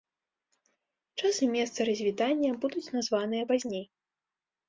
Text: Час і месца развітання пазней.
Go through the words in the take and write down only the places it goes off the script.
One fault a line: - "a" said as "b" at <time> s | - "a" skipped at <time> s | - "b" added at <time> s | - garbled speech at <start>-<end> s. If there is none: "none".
- "будуць названыя" added at 2.6 s